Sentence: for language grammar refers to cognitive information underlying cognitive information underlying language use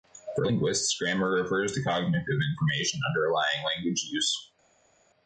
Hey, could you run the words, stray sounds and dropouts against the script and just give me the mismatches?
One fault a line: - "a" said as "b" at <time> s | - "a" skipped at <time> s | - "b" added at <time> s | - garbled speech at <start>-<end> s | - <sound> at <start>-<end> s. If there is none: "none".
- "language" said as "linguists" at 0.4 s
- "cognitive information underlying" skipped at 3.6 s